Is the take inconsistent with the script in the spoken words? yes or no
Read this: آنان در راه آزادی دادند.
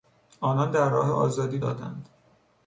no